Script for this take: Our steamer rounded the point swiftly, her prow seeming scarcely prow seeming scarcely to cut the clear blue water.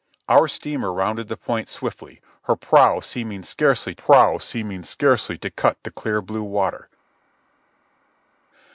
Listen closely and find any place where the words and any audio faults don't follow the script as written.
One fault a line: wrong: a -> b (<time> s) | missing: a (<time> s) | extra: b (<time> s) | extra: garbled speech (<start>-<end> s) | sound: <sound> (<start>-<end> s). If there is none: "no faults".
no faults